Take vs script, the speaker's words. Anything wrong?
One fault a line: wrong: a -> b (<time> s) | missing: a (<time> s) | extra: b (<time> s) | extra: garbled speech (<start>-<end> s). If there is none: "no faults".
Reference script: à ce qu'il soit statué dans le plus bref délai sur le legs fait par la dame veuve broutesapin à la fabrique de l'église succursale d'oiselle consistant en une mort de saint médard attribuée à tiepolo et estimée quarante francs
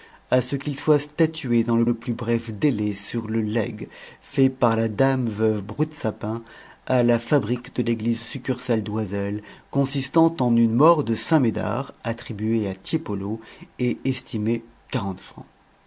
extra: le (1.8 s)